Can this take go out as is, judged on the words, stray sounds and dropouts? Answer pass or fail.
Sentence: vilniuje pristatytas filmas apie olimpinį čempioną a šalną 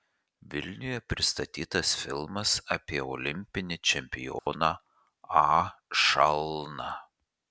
fail